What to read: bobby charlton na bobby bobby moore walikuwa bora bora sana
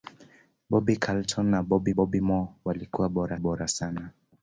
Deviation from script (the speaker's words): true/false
false